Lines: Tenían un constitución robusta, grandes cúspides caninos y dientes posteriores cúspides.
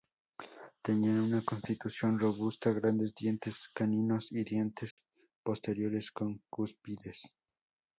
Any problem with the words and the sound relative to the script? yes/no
yes